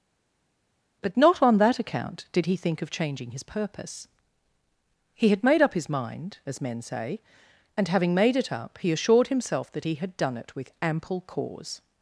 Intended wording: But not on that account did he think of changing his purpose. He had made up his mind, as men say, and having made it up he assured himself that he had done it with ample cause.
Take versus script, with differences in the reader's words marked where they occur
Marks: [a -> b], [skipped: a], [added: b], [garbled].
But not on that account did he think of changing his purpose. He had made up his mind, as men say, and having made it up he assured himself that he had done it with ample cause.